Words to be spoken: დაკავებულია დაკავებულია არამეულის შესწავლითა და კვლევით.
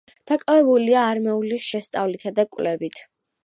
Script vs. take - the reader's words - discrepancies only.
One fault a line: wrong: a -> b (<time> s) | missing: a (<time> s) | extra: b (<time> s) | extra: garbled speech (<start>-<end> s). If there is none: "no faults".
missing: დაკავებულია (1.0 s)